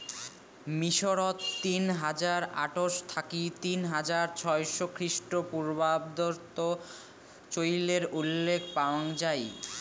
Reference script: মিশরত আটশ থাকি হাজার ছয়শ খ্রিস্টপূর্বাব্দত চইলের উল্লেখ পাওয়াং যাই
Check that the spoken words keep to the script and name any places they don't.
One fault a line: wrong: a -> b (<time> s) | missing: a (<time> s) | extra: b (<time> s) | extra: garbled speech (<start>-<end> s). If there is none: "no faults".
extra: তিন হাজার (1.6 s)
extra: তিন (3.6 s)